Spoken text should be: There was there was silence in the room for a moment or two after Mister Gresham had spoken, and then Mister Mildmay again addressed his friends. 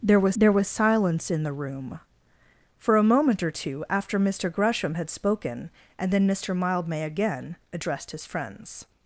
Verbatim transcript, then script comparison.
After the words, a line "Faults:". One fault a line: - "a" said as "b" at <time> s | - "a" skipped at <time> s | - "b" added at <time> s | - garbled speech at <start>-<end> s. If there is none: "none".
There was there was silence in the room for a moment or two after Mister Gresham had spoken, and then Mister Mildmay again addressed his friends.
Faults:
none